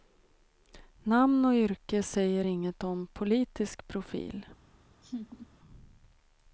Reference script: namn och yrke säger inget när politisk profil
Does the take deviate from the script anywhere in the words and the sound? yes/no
yes